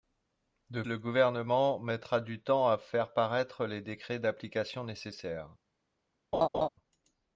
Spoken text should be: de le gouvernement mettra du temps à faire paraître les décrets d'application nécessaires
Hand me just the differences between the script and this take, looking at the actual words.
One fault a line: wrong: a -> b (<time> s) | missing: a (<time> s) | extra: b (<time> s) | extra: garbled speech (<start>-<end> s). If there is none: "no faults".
no faults